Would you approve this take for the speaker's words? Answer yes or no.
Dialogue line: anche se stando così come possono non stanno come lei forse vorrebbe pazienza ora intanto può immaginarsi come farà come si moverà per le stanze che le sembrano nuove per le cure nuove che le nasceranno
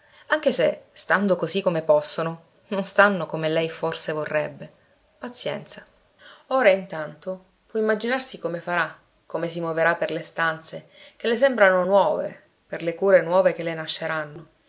yes